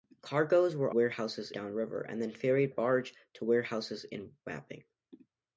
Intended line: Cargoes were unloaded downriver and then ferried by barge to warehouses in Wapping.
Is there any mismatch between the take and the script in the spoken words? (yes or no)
yes